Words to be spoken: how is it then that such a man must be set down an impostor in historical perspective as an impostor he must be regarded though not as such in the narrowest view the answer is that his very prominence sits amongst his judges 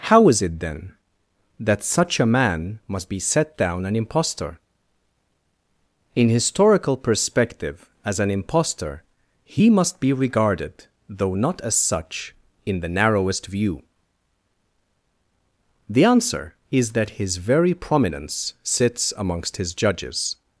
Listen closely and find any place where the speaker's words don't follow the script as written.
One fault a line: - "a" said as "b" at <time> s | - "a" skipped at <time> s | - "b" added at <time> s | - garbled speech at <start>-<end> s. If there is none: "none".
none